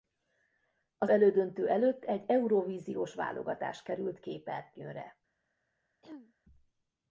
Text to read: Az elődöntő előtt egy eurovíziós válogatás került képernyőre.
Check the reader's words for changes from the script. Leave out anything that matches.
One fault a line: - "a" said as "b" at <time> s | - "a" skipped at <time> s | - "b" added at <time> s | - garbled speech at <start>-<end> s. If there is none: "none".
none